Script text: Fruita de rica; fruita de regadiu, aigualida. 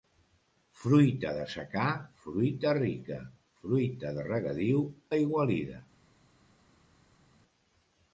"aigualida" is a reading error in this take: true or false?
false